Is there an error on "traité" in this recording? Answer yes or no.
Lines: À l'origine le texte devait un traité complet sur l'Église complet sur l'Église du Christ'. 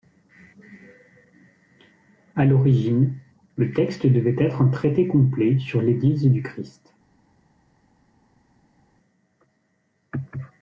no